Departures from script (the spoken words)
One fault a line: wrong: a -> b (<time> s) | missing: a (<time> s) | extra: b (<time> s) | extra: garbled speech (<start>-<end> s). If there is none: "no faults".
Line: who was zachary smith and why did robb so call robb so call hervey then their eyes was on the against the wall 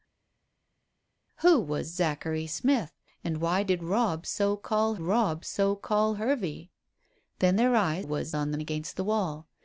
no faults